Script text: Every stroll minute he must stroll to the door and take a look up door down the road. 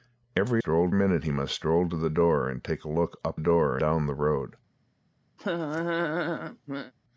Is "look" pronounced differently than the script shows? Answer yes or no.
no